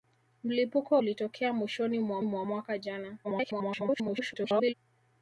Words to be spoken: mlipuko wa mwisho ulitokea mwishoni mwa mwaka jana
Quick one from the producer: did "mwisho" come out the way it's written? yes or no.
no